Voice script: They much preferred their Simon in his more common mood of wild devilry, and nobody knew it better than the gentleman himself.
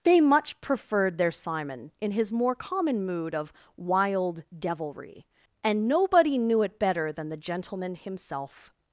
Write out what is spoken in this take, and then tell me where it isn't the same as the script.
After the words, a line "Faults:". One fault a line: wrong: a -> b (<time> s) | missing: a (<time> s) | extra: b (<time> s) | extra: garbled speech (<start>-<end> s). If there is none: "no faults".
They much preferred their Simon in his more common mood of wild devilry, and nobody knew it better than the gentleman himself.
Faults:
no faults